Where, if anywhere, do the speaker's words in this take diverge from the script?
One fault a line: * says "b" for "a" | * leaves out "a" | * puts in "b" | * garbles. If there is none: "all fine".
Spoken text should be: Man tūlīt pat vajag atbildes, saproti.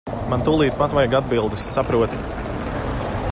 all fine